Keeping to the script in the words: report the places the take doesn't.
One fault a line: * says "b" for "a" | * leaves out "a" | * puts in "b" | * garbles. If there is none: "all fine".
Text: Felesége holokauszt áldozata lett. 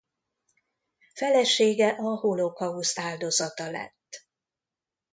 * puts in "a"